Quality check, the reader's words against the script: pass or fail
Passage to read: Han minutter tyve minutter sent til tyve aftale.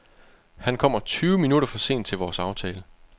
fail